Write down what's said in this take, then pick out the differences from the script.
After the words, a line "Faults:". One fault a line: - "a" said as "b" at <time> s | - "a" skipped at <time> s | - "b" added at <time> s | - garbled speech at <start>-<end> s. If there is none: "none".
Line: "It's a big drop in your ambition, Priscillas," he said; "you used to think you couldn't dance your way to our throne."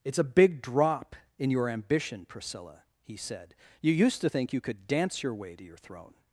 "It's a big drop in your ambition, Priscilla," he said; "you used to think you could dance your way to your throne."
Faults:
- "Priscillas" said as "Priscilla" at 2.2 s
- "couldn't" said as "could" at 4.6 s
- "our" said as "your" at 5.6 s